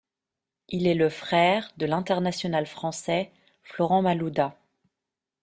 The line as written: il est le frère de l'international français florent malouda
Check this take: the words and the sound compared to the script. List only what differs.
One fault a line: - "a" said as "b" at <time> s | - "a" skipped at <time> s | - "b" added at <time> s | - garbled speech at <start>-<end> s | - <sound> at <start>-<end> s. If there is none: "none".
none